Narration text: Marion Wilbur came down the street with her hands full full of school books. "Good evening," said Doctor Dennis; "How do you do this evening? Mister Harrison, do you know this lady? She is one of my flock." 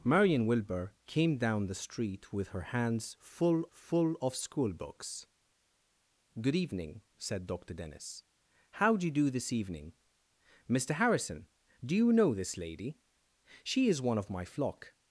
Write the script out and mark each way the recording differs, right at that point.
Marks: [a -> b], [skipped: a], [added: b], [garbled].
Marion Wilbur came down the street with her hands full full of school books. "Good evening," said Doctor Dennis; "How do you do this evening? Mister Harrison, do you know this lady? She is one of my flock."